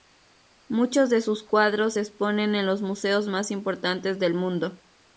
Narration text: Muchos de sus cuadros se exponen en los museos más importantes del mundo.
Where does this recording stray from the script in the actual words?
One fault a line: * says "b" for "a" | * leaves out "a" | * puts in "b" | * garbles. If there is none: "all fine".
all fine